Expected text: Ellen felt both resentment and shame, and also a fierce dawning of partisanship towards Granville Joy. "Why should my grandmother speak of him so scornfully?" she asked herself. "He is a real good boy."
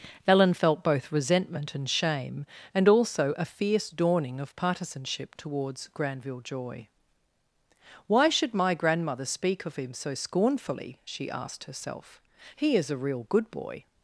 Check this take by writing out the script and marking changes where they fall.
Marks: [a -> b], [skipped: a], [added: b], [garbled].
Ellen felt both resentment and shame, and also a fierce dawning of partisanship towards Granville Joy. "Why should my grandmother speak of him so scornfully?" she asked herself. "He is a real good boy."